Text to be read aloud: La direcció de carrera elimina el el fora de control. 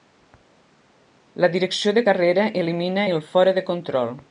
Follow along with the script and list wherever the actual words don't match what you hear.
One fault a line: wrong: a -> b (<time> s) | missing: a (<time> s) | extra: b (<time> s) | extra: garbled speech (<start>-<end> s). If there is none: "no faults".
missing: el (3.2 s)